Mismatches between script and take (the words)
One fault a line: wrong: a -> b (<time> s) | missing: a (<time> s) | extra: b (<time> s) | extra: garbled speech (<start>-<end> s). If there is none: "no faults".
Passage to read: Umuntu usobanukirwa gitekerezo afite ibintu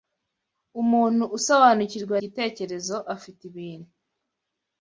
no faults